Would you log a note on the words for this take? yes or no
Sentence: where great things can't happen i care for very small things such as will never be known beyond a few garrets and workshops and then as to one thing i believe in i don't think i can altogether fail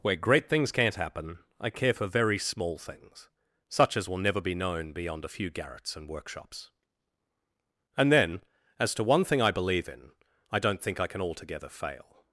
no